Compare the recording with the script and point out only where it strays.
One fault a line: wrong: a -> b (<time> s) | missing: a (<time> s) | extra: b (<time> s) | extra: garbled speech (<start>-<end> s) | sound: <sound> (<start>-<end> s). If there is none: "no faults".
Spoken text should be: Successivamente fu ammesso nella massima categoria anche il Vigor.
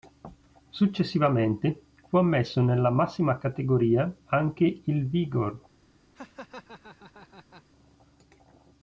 sound: laugh (6.2-7.6 s)